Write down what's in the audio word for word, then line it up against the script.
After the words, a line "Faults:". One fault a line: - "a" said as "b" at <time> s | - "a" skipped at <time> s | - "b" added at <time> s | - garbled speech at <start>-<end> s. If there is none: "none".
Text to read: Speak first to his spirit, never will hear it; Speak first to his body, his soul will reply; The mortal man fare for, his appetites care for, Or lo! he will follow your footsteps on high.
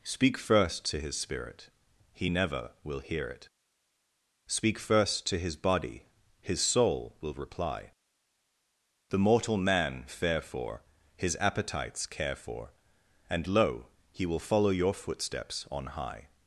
Speak first to his spirit, he never will hear it; Speak first to his body, his soul will reply; The mortal man fare for, his appetites care for, And lo! he will follow your footsteps on high.
Faults:
- "he" added at 2.1 s
- "Or" said as "And" at 13.3 s